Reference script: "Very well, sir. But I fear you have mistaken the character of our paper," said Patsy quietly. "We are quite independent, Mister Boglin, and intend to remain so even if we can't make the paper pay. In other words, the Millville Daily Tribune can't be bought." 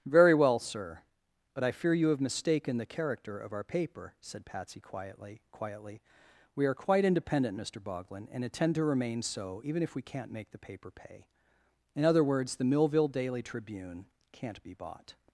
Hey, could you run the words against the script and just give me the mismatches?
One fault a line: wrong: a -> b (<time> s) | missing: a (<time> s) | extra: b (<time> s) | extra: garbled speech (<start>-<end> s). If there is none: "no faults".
extra: quietly (5.5 s)